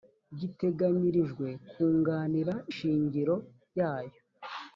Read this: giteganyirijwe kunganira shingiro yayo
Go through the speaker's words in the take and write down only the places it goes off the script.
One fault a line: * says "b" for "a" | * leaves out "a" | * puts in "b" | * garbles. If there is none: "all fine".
all fine